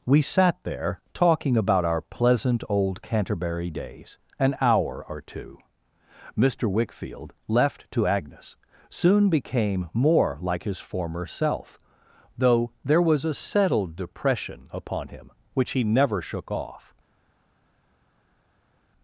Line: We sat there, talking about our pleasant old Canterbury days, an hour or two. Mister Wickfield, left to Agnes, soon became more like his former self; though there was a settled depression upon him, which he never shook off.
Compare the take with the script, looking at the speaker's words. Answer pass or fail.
pass